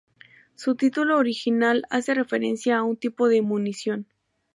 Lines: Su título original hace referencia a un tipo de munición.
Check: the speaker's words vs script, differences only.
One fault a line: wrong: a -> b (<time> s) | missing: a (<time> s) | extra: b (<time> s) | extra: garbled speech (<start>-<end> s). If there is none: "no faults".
no faults